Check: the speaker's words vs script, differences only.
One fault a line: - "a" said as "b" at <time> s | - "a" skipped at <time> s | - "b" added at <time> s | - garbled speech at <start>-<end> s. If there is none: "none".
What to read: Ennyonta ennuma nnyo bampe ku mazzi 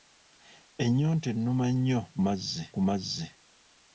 - "bampe" said as "mazzi" at 2.2 s